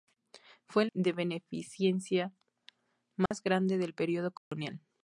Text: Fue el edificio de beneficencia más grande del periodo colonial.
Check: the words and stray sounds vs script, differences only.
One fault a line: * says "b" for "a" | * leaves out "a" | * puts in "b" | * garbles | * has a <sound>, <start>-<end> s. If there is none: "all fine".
* leaves out "edificio"
* has a dropout, 3.3-3.3 s
* has a dropout, 4.4-4.5 s